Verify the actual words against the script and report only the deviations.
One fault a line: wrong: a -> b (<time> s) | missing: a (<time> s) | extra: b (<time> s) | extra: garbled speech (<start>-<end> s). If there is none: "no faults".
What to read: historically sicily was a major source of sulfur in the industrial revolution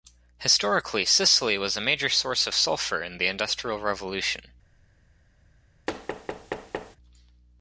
no faults